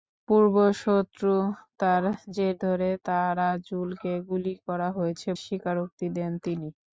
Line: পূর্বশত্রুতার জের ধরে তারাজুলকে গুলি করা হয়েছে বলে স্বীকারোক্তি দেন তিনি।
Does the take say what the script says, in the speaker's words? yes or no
no